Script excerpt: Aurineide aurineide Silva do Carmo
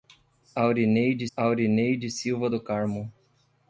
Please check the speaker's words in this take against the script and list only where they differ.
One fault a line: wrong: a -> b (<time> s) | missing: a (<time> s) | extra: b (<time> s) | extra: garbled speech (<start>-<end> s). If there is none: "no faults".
no faults